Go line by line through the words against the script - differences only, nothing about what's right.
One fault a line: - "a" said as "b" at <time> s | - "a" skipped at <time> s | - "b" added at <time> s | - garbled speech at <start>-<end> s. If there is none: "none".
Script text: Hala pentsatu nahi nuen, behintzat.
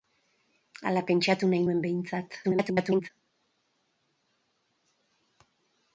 - garbled speech at 2.4-3.1 s